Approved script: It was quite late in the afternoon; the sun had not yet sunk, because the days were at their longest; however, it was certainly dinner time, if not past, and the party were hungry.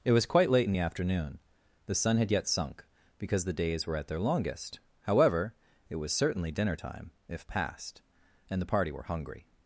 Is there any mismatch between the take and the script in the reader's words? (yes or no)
yes